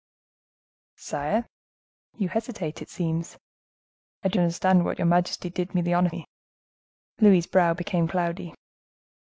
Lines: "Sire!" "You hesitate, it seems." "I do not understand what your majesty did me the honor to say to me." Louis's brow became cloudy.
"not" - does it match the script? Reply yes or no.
no